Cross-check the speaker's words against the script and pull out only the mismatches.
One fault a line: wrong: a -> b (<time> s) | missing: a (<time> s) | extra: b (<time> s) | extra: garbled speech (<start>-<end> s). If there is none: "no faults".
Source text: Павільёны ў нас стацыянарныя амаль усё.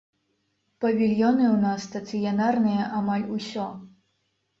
no faults